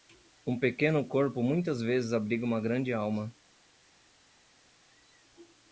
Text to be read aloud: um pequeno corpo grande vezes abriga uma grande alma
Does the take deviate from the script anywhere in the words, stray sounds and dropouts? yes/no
yes